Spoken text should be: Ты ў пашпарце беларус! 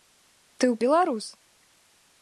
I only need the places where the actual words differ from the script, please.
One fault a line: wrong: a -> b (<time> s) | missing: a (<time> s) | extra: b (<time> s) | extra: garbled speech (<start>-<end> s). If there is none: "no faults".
missing: пашпарце (0.8 s)